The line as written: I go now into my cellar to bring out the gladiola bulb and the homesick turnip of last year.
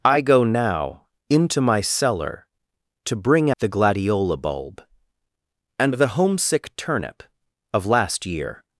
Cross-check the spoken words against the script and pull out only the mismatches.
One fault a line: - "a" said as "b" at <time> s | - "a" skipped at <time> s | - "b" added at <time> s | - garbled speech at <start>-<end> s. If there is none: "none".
- "out" skipped at 3.5 s